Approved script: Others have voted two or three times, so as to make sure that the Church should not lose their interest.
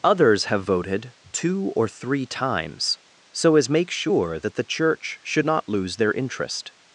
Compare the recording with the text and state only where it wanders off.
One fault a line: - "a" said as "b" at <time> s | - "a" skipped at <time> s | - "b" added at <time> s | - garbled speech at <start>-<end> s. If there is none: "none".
- "to" skipped at 3.7 s